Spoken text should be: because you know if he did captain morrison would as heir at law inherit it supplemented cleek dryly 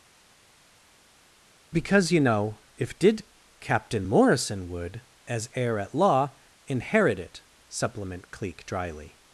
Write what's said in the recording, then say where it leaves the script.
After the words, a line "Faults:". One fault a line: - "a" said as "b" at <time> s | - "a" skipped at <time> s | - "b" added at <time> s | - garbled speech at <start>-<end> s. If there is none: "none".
because you know if did captain morrison would as heir at law inherit it supplement cleek dryly
Faults:
- "he" skipped at 3.0 s
- "supplemented" said as "supplement" at 7.7 s